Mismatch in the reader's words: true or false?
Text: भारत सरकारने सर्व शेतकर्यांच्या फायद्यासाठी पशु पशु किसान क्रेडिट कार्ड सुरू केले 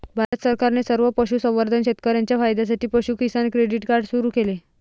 true